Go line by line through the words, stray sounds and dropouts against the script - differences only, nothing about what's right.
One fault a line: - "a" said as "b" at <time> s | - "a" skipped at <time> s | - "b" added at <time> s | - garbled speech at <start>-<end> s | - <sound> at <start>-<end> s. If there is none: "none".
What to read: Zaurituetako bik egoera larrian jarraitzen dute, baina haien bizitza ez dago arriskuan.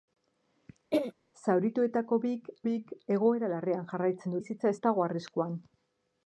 - throat clearing at 0.9-1.1 s
- "bik" added at 2.6 s
- "dute baina haien" skipped at 4.4 s